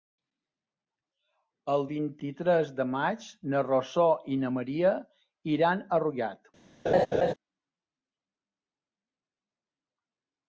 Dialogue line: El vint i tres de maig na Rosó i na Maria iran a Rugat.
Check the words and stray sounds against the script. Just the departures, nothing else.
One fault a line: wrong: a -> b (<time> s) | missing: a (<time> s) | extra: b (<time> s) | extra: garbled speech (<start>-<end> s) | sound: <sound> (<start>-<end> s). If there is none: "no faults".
sound: laugh (6.8-7.3 s)